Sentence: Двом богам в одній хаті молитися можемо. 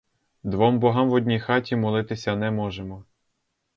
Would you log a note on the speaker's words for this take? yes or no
yes